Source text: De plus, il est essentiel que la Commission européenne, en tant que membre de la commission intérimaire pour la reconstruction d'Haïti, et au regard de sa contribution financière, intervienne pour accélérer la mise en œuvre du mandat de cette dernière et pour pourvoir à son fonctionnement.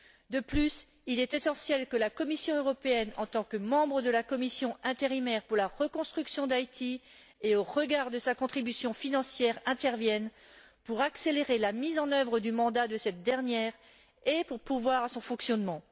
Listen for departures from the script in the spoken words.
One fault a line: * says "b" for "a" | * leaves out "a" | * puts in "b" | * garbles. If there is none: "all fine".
all fine